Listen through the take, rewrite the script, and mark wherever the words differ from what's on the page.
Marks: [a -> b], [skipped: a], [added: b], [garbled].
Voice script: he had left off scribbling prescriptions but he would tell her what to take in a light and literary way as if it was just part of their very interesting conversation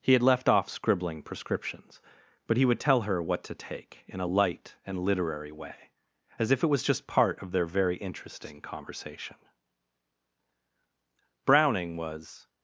he had left off scribbling prescriptions but he would tell her what to take in a light and literary way as if it was just part of their very interesting conversation [added: browning was]